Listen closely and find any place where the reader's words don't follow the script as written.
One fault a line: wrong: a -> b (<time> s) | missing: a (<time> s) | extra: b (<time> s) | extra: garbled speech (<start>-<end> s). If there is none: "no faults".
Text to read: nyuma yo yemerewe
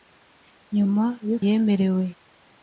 no faults